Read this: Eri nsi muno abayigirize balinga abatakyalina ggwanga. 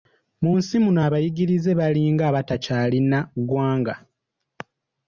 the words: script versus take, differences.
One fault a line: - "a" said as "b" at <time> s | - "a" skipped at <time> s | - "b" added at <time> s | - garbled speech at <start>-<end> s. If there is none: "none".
- "Eri" said as "Mu" at 0.4 s